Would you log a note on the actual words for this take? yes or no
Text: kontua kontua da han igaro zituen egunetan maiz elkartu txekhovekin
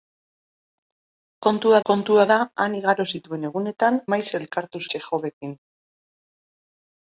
no